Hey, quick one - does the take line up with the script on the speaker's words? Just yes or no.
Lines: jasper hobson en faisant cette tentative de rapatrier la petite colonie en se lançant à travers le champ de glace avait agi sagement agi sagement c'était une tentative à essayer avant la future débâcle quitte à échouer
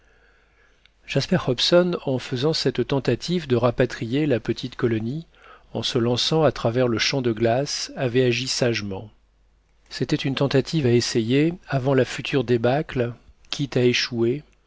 no